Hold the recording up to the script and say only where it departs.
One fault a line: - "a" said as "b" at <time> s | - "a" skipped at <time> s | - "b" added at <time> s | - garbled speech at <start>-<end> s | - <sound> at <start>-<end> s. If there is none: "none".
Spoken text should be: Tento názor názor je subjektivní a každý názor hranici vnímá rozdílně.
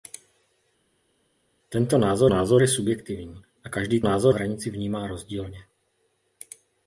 none